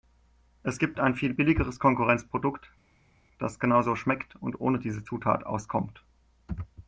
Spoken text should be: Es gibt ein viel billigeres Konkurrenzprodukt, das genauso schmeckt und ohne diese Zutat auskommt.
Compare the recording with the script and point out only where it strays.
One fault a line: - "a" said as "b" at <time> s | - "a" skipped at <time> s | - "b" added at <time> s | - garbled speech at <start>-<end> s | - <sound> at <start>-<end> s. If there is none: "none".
none